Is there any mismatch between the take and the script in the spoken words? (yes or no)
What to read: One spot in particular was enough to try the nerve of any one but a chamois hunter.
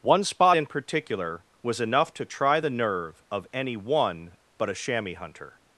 no